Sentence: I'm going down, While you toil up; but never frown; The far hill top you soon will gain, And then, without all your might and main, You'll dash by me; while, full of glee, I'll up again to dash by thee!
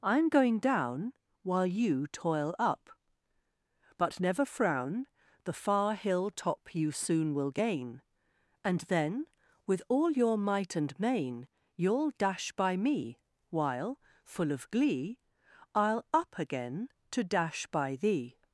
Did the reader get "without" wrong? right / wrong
wrong